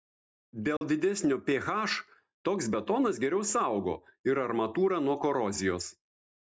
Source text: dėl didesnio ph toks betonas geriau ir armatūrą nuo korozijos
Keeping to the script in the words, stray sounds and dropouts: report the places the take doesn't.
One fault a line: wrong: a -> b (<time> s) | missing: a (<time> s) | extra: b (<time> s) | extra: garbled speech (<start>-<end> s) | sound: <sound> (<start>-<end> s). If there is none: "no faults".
sound: dropout (0.8-0.8 s)
extra: saugo (3.5 s)